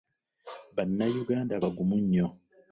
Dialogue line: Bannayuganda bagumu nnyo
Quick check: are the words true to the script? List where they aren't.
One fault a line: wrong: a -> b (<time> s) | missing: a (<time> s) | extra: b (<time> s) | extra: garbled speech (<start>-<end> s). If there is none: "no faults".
no faults